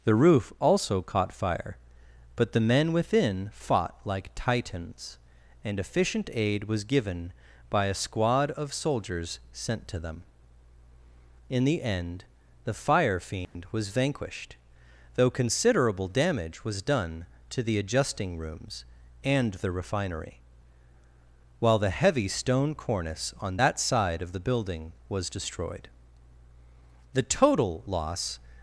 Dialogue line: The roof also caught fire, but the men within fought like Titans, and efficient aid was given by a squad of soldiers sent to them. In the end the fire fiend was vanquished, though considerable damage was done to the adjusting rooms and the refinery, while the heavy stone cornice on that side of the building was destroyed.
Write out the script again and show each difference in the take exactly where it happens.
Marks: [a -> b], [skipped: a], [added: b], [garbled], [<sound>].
The roof also caught fire, but the men within fought like Titans, and efficient aid was given by a squad of soldiers sent to them. In the end the fire fiend [dropout] was vanquished, though considerable damage was done to the adjusting rooms and the refinery, while the heavy stone cornice on that side of the building was destroyed. [added: The total loss]